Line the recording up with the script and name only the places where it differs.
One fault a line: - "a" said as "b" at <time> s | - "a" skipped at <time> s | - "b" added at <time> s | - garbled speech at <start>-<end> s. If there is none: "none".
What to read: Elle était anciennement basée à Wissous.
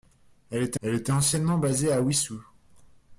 - "elle était" added at 0.8 s